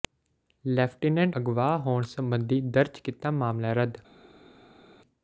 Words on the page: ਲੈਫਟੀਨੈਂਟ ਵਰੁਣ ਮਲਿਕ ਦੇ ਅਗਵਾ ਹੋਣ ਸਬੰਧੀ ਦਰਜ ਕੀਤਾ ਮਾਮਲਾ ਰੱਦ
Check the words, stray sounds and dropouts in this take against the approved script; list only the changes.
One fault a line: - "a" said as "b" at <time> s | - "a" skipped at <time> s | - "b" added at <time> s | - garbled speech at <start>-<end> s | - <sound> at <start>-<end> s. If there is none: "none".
- "ਵਰੁਣ ਮਲਿਕ ਦੇ" skipped at 1.4 s